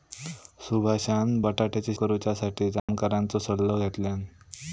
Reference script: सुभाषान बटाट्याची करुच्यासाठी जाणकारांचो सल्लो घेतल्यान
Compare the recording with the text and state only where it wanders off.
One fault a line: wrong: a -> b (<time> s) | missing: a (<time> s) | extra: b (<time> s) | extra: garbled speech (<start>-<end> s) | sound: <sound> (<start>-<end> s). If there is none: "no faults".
sound: dropout (2.8-2.9 s)